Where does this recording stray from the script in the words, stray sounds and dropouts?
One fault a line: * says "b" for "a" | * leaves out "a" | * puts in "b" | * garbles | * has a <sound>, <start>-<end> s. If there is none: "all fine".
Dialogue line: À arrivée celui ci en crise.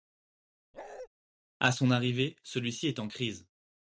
* has a bark, 0.7-1.1 s
* puts in "son"
* puts in "est"